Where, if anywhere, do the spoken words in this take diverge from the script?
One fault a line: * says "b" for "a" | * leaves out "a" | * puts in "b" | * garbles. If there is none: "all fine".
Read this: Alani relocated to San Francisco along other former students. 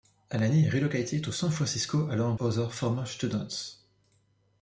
all fine